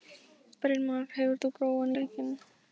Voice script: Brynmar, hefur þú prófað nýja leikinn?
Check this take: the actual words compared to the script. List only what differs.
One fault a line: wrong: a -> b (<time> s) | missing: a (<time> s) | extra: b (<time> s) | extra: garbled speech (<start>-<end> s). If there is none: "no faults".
missing: nýja (1.9 s)